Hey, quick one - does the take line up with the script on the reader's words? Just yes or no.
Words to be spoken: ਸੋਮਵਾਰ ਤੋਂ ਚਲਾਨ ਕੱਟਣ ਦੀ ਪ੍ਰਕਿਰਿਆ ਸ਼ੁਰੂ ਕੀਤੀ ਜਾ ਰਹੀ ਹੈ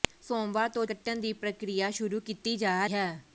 no